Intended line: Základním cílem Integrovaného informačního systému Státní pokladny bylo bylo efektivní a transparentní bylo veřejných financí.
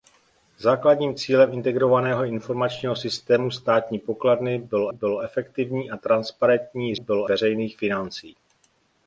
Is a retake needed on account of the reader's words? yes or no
no